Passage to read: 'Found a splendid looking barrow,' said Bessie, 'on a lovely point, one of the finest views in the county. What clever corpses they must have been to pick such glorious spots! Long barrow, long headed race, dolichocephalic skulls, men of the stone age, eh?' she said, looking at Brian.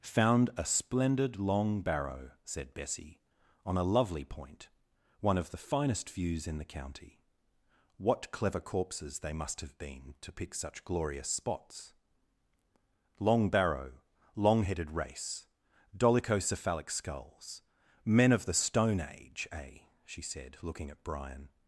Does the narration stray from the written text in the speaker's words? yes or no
yes